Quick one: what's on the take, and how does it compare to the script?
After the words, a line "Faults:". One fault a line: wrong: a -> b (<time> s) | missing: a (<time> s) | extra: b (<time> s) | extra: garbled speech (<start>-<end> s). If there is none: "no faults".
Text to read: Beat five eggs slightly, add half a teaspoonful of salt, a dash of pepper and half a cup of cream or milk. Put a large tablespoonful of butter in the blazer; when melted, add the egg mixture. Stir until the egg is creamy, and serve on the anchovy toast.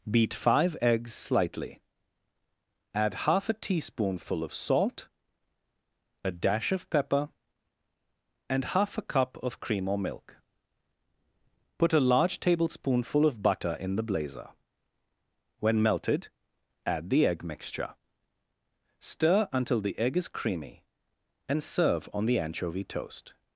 Beat five eggs slightly, add half a teaspoonful of salt, a dash of pepper and half a cup of cream or milk. Put a large tablespoonful of butter in the blazer; when melted, add the egg mixture. Stir until the egg is creamy, and serve on the anchovy toast.
Faults:
no faults